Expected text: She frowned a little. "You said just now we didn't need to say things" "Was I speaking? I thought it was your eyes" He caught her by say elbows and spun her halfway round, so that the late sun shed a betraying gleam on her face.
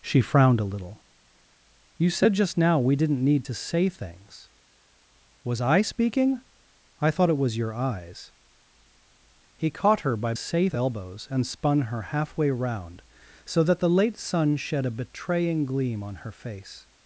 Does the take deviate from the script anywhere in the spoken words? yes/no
no